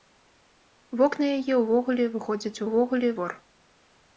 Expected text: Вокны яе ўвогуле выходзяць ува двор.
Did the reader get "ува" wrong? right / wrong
wrong